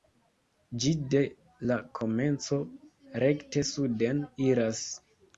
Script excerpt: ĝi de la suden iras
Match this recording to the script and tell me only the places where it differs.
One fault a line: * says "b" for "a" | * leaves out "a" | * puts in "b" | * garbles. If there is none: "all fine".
* puts in "komenco rekte"